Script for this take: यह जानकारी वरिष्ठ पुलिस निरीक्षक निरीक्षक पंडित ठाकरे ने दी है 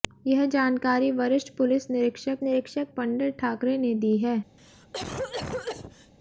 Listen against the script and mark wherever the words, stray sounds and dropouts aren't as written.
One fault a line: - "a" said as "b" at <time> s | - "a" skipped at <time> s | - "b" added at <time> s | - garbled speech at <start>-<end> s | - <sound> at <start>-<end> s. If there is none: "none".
- cough at 4.6-6.1 s